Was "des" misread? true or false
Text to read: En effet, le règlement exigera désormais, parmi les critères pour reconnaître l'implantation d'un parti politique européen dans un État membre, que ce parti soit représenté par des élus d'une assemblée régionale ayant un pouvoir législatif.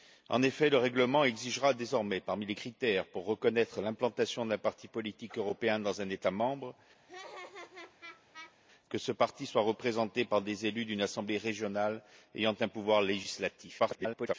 false